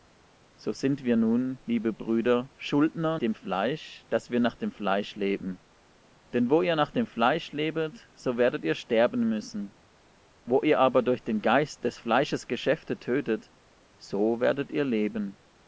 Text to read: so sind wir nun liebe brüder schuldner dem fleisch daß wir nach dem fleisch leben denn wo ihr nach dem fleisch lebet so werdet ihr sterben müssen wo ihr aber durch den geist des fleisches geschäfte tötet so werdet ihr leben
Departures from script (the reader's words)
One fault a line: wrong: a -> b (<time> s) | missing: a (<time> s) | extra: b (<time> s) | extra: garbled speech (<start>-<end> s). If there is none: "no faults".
no faults